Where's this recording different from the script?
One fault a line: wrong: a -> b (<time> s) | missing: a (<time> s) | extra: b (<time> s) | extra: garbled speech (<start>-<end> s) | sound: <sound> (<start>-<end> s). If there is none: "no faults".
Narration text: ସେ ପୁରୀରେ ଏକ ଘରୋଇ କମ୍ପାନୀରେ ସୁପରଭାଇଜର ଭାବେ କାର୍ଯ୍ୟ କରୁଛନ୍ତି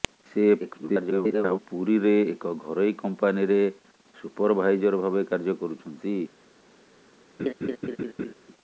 extra: garbled speech (0.6-1.6 s)
sound: laugh (7.4-8.3 s)